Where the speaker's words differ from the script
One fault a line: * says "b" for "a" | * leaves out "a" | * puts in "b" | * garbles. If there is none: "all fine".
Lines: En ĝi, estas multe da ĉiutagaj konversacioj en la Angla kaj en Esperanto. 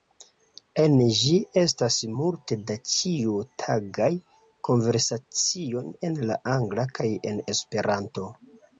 all fine